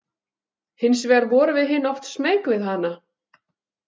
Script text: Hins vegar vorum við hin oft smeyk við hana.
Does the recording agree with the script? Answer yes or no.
yes